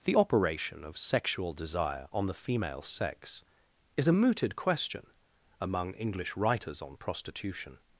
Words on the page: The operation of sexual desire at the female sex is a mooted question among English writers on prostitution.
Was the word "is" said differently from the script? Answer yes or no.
no